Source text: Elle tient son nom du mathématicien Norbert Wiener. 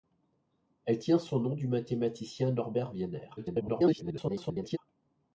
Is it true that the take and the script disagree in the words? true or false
true